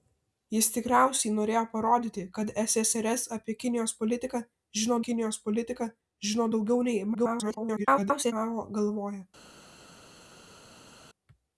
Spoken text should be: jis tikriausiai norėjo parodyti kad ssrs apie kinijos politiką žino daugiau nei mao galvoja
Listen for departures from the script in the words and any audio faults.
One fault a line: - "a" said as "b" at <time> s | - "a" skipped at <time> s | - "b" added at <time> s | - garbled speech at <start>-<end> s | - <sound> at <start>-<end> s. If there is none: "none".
- "kinijos politiką žino" added at 5.1 s
- garbled speech at 7.1-8.3 s